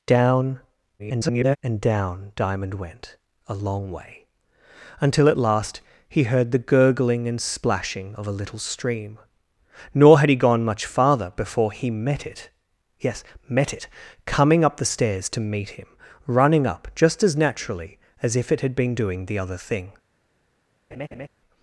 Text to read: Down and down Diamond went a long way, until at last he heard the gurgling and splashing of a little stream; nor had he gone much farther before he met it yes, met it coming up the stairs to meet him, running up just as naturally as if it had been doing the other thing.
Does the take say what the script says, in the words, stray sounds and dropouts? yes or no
no